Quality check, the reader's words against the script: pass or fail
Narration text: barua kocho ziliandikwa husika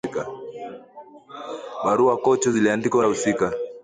pass